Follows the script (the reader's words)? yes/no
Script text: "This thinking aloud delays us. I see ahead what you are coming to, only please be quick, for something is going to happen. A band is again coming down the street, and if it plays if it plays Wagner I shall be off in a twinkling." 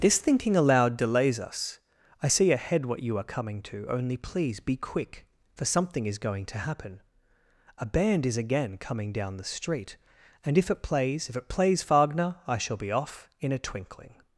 yes